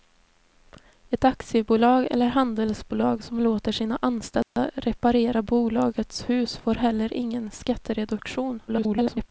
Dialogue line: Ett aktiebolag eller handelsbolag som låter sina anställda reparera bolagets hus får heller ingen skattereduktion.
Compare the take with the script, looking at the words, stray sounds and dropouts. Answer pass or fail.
fail